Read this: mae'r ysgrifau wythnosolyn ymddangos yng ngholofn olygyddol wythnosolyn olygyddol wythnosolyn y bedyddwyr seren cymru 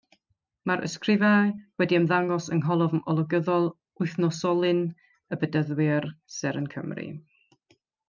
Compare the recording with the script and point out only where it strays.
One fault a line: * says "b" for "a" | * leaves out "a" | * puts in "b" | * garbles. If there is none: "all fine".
* says "wedi" for "wythnosolyn"
* leaves out "olygyddol wythnosolyn"